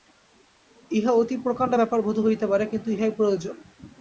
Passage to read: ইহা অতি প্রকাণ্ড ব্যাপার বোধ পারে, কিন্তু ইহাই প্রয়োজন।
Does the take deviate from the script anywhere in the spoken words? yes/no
yes